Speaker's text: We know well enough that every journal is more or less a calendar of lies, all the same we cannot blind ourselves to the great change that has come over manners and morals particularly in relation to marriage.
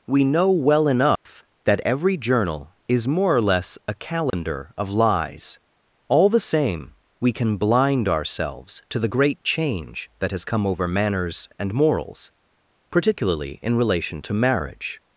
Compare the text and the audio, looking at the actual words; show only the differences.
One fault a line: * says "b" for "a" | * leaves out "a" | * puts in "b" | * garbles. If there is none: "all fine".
* says "can" for "cannot"